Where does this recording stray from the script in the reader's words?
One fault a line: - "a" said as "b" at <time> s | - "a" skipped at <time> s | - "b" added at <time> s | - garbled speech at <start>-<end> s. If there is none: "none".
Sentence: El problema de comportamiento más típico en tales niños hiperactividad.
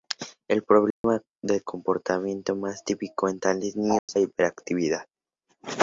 none